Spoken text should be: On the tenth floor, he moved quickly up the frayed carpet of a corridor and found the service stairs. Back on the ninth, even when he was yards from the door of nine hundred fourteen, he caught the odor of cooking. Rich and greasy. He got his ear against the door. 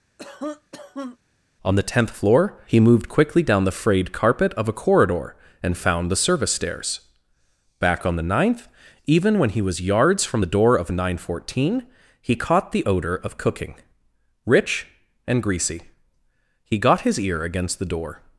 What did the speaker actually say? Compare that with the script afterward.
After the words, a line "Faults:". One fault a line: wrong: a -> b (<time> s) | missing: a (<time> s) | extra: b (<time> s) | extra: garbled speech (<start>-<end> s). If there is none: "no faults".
On the tenth floor, he moved quickly down the frayed carpet of a corridor and found the service stairs. Back on the ninth, even when he was yards from the door of nine hundred fourteen, he caught the odor of cooking. Rich and greasy. He got his ear against the door.
Faults:
wrong: up -> down (3.4 s)